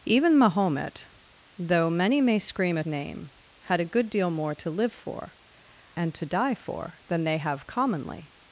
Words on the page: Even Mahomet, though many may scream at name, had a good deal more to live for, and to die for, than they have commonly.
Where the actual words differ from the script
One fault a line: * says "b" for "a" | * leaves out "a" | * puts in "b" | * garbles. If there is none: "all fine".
all fine